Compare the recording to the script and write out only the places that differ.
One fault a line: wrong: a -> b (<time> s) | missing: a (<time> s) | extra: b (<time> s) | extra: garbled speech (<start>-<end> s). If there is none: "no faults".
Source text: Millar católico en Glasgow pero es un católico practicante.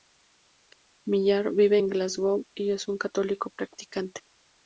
wrong: católico -> vive (1.5 s)
wrong: pero -> y (2.6 s)